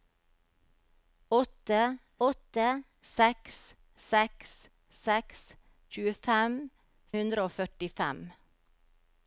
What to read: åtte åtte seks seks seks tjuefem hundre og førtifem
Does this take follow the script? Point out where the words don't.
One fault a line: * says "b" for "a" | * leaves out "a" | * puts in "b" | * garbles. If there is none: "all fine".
all fine